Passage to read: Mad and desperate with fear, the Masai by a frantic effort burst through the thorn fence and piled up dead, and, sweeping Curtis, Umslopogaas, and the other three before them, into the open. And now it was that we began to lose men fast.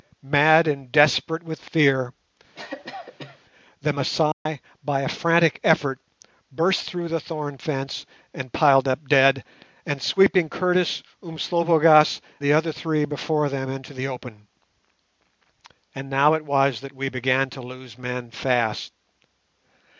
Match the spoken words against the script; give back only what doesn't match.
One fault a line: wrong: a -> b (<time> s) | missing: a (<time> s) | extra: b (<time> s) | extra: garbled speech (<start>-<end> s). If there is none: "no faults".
missing: and (12.2 s)